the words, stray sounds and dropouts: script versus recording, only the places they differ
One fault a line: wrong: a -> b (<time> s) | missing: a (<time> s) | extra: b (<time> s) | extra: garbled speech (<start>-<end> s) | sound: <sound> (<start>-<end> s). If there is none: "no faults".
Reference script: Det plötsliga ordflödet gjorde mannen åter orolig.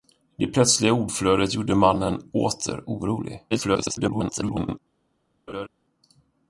extra: garbled speech (3.5-4.8 s)
sound: laugh (5.5-5.7 s)